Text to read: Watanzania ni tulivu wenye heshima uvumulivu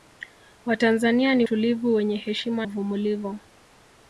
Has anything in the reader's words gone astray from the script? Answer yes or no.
no